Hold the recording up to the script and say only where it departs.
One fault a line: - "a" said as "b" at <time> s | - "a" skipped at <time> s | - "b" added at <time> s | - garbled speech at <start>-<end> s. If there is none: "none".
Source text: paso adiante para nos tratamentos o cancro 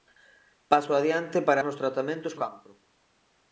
none